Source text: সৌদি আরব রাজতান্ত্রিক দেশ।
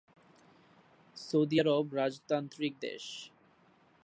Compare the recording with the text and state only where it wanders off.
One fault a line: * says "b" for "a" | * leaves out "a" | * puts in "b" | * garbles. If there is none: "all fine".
all fine